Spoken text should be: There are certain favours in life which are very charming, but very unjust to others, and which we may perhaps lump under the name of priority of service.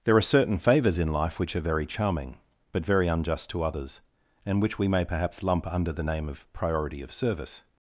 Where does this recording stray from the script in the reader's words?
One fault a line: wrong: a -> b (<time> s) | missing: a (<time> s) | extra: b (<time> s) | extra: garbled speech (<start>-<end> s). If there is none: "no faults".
no faults